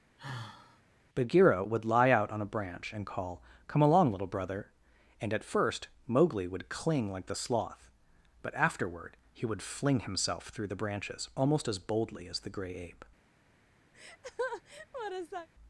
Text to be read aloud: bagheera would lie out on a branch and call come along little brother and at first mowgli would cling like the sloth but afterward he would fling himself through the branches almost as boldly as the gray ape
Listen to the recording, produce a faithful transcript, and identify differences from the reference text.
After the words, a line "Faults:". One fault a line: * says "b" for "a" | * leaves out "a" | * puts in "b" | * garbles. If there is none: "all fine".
bagheera would lie out on a branch and call come along little brother and at first mowgli would cling like the sloth but afterward he would fling himself through the branches almost as boldly as the gray ape
Faults:
all fine